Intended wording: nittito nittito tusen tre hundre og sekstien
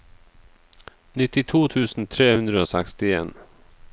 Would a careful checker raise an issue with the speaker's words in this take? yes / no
yes